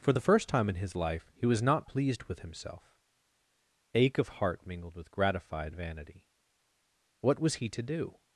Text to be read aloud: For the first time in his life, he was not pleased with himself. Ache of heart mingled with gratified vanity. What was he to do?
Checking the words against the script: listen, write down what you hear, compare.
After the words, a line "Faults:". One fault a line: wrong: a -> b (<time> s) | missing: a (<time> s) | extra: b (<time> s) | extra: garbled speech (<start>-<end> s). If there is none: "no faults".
For the first time in his life, he was not pleased with himself. Ache of heart mingled with gratified vanity. What was he to do?
Faults:
no faults